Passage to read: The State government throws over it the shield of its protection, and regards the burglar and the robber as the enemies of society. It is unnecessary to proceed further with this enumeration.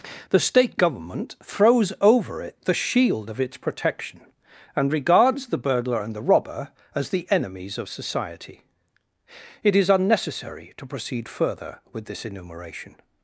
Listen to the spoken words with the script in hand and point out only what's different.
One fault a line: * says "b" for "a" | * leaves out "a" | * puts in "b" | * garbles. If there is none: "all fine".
all fine